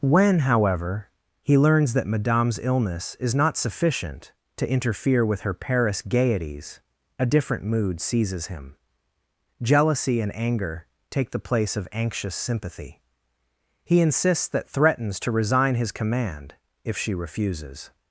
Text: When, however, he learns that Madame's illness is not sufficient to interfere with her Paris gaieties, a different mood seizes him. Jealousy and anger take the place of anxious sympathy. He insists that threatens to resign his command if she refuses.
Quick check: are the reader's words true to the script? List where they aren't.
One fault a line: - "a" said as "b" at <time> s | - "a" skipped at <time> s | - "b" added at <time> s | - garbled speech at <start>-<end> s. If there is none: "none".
none